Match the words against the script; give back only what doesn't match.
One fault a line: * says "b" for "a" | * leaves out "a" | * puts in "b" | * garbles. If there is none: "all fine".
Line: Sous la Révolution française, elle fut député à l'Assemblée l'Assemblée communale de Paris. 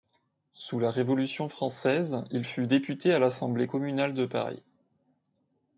* says "il" for "elle"
* leaves out "l'Assemblée"